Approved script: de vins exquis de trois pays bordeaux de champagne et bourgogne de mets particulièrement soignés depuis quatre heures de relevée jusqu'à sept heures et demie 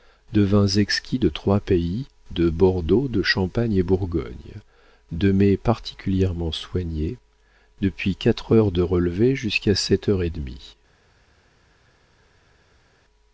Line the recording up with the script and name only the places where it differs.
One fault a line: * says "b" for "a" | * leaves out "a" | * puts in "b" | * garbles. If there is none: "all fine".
* puts in "de"